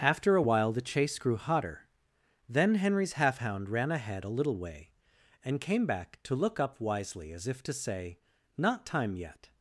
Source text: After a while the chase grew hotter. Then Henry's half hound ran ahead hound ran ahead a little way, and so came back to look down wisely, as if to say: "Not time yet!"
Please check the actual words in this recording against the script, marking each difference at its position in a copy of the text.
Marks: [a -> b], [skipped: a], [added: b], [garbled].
After a while the chase grew hotter. Then Henry's half hound ran ahead [skipped: hound ran ahead] a little way, and [skipped: so] came back to look [down -> up] wisely, as if to say: "Not time yet!"